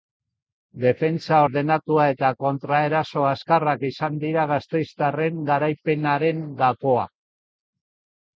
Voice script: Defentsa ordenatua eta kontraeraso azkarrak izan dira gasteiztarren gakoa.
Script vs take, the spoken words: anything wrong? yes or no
yes